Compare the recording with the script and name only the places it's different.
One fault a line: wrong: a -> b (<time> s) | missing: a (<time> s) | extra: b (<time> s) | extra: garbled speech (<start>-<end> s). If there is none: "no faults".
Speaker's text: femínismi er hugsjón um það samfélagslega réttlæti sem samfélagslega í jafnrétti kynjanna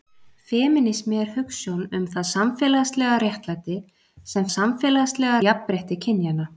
no faults